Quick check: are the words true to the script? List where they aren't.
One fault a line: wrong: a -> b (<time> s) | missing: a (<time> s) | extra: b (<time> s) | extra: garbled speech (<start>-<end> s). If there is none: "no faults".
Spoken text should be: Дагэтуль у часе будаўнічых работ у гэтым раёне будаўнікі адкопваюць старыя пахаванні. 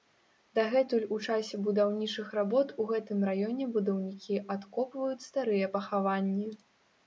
no faults